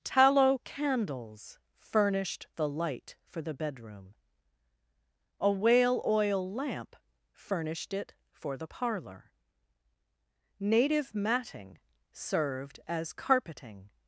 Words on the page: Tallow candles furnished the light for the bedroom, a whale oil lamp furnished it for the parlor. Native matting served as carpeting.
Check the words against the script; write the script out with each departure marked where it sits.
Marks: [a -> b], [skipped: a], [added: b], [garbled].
Tallow candles furnished the light for the bedroom, a whale oil lamp furnished it for the parlor. Native matting served as carpeting.